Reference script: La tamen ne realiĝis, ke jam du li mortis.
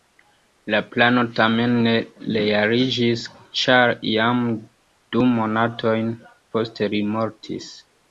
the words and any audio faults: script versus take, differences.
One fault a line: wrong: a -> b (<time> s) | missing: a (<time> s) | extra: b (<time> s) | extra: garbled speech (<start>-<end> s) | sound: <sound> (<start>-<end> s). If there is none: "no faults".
extra: plano (0.9 s)
wrong: ke -> ĉar (3.6 s)
extra: monatojn poste (5.3 s)